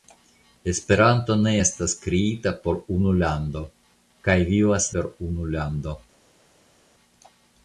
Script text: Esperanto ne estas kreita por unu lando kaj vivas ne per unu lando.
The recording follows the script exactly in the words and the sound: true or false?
false